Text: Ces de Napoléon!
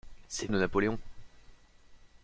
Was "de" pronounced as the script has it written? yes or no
yes